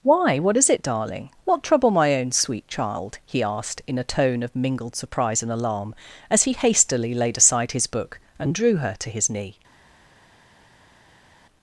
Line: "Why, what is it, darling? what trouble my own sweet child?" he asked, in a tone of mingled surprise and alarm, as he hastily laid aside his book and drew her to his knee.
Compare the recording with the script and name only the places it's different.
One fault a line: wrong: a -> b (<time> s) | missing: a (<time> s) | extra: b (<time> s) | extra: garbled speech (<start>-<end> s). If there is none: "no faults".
no faults